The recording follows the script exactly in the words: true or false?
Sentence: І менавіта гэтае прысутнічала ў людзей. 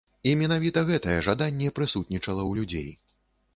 false